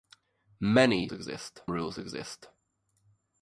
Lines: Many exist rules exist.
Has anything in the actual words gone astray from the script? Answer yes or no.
no